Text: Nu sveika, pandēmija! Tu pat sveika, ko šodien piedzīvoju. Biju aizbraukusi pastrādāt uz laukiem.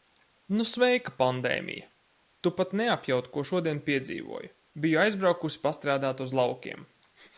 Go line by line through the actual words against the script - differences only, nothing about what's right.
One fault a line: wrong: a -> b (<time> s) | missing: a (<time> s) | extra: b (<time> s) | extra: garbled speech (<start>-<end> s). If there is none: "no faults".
wrong: sveika -> neapjaut (2.8 s)